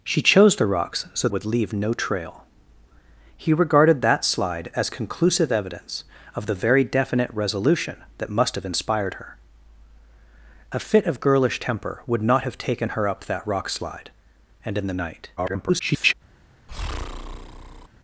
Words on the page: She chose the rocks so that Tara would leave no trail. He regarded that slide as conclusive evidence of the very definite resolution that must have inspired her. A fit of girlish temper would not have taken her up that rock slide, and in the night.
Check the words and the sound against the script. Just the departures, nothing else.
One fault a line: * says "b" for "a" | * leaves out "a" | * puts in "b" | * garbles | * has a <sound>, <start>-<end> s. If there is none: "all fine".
* leaves out "that Tara"
* garbles
* has a breath, 16.7-17.9 s